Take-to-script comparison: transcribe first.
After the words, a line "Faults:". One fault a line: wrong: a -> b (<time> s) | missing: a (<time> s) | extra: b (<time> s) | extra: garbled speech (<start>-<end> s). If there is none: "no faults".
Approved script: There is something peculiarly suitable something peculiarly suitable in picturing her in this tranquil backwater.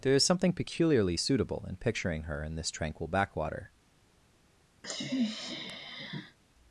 There is something peculiarly suitable in picturing her in this tranquil backwater.
Faults:
missing: something peculiarly suitable (1.7 s)